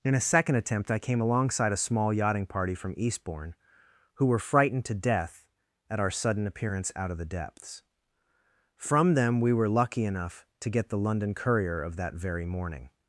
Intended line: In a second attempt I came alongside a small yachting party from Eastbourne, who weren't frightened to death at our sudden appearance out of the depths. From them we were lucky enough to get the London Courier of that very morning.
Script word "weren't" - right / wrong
wrong